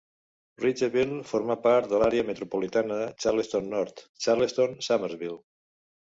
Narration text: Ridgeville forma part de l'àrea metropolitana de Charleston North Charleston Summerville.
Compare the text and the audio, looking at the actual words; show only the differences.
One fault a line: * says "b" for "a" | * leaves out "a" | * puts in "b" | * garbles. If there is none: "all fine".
all fine